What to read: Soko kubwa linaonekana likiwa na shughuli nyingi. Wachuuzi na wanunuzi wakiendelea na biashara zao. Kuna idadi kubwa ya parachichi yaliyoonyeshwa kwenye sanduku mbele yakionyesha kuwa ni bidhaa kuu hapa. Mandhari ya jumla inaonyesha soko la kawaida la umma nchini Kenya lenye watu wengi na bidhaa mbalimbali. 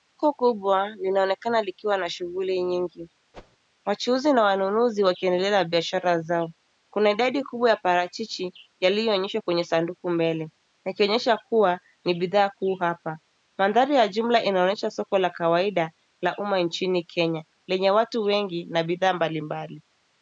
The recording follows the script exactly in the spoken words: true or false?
true